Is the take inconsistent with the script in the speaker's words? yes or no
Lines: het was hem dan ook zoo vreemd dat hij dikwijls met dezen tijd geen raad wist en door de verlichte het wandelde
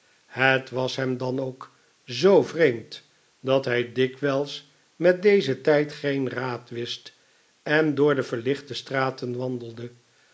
yes